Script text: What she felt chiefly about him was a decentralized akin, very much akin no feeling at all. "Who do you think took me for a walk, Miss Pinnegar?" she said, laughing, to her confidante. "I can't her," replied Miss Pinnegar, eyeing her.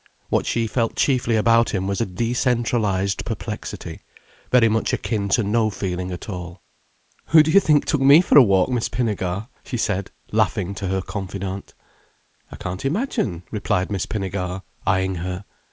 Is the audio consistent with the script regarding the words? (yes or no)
no